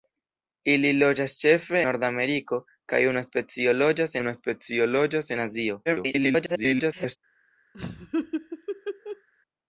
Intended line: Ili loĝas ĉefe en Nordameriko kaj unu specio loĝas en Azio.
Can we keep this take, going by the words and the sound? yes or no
no